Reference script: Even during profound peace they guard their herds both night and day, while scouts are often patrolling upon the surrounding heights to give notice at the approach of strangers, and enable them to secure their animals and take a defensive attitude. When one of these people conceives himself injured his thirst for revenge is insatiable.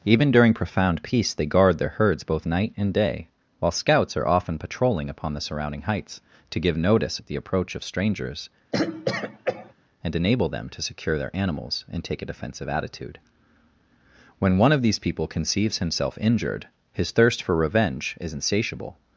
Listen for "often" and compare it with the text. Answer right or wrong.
right